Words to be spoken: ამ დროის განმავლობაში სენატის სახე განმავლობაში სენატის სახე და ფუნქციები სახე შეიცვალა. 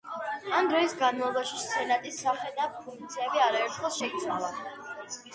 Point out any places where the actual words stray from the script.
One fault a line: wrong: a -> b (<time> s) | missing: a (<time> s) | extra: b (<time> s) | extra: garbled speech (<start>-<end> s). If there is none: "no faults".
missing: განმავლობაში სენატის სახე (2.5 s)
wrong: სახე -> არაერთხელ (3.5 s)